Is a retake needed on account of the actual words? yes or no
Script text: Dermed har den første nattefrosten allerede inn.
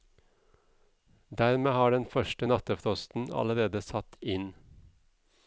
yes